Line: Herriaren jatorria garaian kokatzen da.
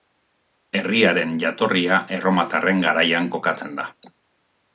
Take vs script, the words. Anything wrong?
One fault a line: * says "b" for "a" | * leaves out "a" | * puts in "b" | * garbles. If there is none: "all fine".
* puts in "erromatarren"